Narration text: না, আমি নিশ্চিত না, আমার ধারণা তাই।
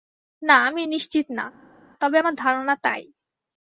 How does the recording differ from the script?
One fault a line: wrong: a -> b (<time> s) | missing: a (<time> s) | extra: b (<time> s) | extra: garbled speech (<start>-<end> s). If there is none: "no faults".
extra: তবে (2.0 s)